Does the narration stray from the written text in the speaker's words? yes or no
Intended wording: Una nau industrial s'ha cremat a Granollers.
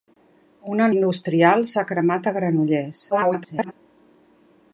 yes